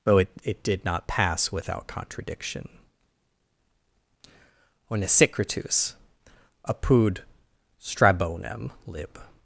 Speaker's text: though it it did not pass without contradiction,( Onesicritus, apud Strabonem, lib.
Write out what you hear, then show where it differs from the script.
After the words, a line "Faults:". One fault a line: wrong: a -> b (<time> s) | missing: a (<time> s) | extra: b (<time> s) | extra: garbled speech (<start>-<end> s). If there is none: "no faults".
though it it did not pass without contradiction,( Onesicritus, apud Strabonem, lib.
Faults:
no faults